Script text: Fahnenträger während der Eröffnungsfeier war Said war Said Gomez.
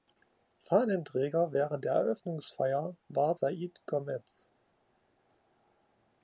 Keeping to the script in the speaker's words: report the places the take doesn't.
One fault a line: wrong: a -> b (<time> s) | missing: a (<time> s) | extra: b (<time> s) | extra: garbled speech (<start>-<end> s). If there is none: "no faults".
missing: war Said (3.8 s)